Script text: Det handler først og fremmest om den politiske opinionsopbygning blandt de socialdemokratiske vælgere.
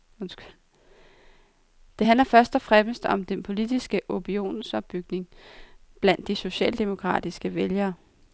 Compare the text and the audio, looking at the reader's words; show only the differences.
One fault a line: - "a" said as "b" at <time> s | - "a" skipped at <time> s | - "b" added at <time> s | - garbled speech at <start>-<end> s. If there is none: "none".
none